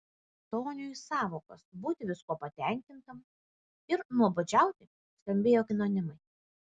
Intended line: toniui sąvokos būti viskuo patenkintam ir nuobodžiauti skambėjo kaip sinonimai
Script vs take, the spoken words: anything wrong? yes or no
yes